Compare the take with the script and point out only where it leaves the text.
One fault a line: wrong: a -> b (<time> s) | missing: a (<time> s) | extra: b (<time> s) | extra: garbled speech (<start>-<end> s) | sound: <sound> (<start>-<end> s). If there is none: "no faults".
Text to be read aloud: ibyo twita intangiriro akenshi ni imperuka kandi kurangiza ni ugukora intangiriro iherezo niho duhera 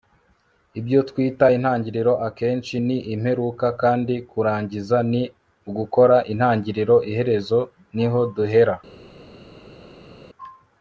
no faults